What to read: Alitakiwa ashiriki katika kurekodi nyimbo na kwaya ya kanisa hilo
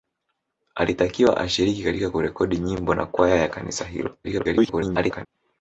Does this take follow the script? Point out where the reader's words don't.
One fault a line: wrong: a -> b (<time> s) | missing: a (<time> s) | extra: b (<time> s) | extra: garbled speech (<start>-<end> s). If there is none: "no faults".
extra: garbled speech (4.2-5.3 s)